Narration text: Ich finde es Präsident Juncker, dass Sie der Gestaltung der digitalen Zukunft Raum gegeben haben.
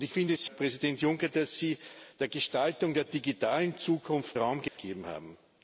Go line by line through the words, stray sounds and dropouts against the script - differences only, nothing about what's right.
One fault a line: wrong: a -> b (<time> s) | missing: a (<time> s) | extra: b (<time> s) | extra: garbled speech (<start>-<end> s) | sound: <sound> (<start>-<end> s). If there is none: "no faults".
sound: dropout (4.7-4.8 s)